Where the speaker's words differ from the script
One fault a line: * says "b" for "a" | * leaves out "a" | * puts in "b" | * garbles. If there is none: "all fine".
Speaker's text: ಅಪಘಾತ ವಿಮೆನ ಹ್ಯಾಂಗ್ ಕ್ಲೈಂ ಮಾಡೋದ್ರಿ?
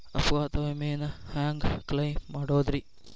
all fine